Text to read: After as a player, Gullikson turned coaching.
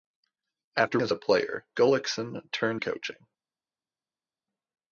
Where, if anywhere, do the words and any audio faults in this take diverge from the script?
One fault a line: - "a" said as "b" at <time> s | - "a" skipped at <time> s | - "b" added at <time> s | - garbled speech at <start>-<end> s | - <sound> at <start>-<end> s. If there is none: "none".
none